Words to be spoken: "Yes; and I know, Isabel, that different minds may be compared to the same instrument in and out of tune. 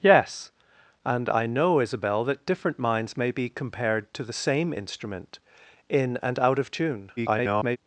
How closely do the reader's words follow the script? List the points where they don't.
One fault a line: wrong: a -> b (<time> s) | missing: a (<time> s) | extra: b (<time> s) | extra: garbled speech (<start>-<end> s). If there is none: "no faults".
extra: garbled speech (7.2-7.8 s)